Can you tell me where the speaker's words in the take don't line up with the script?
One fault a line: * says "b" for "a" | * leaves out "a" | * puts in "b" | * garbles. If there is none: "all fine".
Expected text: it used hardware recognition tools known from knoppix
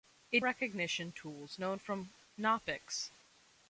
* leaves out "used hardware"